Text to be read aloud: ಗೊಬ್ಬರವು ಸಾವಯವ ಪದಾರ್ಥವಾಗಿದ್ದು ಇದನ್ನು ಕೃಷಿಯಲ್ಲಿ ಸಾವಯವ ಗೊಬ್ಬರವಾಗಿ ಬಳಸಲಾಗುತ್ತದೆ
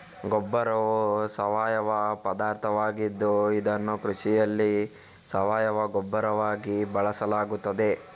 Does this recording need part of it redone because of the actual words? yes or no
no